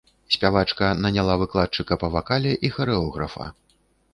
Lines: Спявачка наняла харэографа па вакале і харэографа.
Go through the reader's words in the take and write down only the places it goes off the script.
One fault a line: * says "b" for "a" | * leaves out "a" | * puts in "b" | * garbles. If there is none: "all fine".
* says "выкладчыка" for "харэографа"